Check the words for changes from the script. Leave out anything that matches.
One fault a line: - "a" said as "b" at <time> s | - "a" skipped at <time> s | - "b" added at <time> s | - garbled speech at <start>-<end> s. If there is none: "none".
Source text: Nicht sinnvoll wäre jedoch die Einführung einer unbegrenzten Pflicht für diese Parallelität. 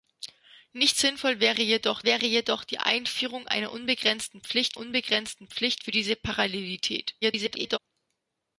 - "wäre jedoch" added at 2.0 s
- "unbegrenzten Pflicht" added at 4.8 s
- garbled speech at 7.2-7.8 s